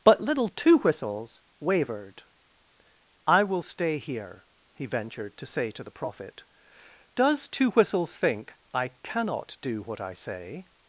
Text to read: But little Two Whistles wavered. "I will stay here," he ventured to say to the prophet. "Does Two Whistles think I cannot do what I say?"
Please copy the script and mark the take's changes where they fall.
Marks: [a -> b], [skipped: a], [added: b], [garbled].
But little Two Whistles wavered. "I will stay here," he ventured to say to the prophet. "Does Two Whistles think I cannot do what I say?"